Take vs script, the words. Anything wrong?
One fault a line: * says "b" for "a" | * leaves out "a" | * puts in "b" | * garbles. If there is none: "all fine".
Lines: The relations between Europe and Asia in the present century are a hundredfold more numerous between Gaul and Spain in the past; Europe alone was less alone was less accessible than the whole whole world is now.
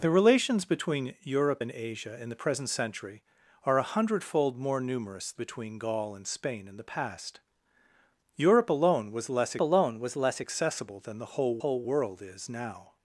all fine